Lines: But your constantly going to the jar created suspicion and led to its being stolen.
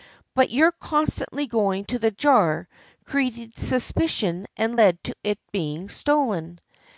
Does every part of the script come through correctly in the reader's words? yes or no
yes